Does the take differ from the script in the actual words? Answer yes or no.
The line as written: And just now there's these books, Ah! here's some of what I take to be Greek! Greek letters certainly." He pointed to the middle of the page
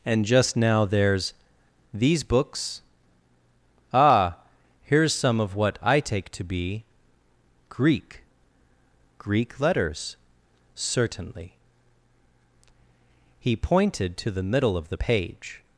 no